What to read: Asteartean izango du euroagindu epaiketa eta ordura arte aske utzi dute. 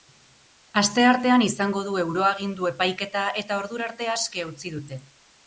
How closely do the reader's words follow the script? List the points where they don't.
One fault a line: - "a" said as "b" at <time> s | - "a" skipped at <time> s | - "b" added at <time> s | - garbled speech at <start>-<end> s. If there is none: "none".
none